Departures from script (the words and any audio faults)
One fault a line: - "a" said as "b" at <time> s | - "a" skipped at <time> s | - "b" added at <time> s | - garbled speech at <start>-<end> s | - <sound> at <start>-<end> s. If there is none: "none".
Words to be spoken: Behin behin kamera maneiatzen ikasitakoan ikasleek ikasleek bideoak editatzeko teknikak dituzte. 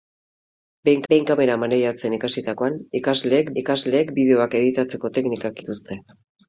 none